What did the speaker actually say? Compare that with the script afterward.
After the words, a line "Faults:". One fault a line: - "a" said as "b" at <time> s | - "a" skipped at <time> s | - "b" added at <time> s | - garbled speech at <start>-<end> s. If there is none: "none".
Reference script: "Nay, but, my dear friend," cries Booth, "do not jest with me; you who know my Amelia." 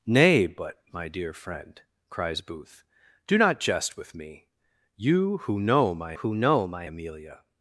"Nay, but, my dear friend," cries Booth, "do not jest with me; you who know my who know my Amelia."
Faults:
- "who know my" added at 6.1 s